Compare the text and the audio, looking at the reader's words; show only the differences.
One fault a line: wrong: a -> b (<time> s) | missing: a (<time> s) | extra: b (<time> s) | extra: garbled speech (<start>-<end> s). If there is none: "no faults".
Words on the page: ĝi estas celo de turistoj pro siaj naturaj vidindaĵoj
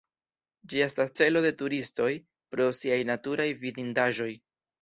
no faults